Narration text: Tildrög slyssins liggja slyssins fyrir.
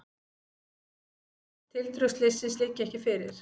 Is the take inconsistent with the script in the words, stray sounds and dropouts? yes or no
yes